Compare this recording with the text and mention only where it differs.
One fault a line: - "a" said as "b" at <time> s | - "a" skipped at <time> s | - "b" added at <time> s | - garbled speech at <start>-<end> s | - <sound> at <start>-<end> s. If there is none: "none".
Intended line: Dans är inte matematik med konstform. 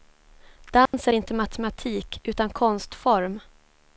- dropout at 0.9-0.9 s
- "med" said as "utan" at 2.2 s